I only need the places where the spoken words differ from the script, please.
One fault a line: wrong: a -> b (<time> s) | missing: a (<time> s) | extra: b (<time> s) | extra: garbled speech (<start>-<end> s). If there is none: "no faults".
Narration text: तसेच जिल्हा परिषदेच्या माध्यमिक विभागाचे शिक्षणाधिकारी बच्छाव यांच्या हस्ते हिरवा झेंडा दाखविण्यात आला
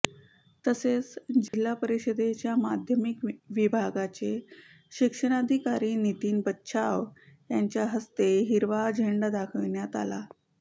extra: नितीन (6.0 s)